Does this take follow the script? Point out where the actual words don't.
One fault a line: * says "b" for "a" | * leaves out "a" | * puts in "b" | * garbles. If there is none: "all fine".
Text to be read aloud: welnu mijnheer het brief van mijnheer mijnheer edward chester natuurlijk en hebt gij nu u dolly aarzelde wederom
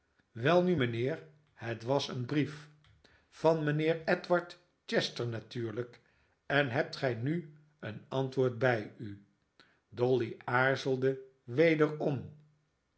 * puts in "was een"
* leaves out "mijnheer"
* puts in "een antwoord bij"